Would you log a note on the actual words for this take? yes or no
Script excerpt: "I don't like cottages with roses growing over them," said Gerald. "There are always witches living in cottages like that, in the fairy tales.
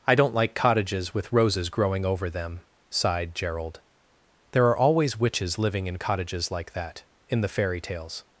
yes